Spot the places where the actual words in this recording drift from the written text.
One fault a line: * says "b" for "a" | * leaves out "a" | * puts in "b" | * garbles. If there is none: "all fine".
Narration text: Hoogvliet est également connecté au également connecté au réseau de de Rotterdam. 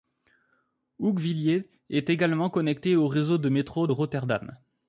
* leaves out "également connecté au"
* puts in "métro"